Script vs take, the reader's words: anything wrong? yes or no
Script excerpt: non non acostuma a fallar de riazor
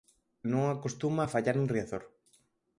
yes